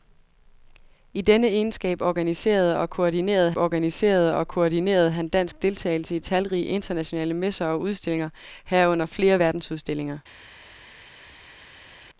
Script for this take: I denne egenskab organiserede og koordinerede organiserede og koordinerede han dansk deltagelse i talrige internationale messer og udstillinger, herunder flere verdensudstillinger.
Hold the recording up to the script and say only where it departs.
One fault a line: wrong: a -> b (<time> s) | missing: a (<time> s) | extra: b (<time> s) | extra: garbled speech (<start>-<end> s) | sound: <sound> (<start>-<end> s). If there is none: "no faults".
no faults